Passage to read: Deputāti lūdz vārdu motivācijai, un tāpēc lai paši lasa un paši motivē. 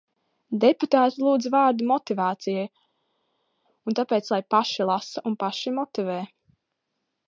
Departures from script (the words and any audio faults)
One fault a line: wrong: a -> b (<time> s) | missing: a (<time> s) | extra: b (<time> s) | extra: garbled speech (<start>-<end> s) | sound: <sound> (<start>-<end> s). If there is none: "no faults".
no faults